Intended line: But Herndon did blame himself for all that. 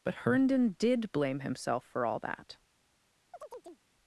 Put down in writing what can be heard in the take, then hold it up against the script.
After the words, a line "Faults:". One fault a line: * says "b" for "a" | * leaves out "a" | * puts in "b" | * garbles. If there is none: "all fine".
But Herndon did blame himself for all that.
Faults:
all fine